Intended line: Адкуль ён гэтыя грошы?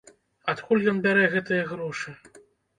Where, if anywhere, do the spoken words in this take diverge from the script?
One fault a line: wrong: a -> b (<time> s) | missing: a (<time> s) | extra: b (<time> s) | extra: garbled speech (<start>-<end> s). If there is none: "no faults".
extra: бярэ (1.1 s)